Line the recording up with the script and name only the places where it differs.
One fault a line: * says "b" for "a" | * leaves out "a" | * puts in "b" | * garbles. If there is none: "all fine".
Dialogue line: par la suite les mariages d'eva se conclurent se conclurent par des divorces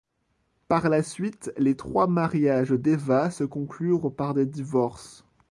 * puts in "trois"
* leaves out "se conclurent"